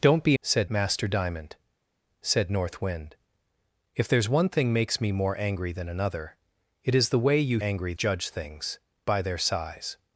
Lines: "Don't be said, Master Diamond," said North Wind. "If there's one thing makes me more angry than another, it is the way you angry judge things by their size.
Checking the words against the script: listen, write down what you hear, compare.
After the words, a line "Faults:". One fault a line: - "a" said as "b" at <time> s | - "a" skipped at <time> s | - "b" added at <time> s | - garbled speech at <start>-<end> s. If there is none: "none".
"Don't be said, Master Diamond," said North Wind. "If there's one thing makes me more angry than another, it is the way you angry judge things by their size.
Faults:
none